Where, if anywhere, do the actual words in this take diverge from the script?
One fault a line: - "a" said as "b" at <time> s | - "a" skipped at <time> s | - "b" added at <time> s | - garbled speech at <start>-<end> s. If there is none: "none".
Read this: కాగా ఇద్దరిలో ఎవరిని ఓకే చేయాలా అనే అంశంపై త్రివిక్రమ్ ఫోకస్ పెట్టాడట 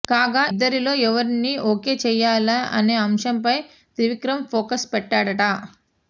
none